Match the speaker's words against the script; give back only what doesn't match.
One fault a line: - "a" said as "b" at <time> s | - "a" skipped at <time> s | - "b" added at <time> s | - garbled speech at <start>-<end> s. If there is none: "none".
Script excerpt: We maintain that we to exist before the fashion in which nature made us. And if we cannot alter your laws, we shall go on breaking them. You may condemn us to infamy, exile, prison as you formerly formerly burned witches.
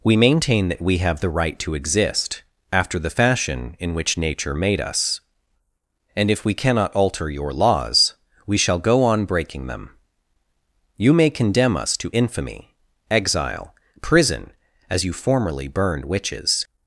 - "have the right" added at 1.0 s
- "before" said as "after" at 2.7 s
- "formerly" skipped at 15.7 s